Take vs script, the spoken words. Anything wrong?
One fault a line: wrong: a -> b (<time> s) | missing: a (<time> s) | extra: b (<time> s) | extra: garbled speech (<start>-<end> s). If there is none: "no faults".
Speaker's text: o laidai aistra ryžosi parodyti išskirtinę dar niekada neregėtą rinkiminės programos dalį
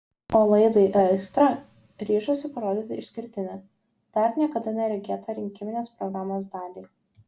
no faults